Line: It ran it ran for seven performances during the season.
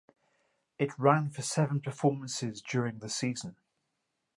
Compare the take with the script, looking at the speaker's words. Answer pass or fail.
fail